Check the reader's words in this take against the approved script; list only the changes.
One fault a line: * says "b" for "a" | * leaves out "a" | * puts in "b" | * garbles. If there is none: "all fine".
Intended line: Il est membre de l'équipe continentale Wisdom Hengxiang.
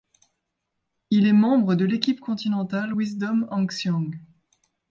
all fine